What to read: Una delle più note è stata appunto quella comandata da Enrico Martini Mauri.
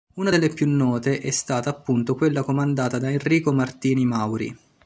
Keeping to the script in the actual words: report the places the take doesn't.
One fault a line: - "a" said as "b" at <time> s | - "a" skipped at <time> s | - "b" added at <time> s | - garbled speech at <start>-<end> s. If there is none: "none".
none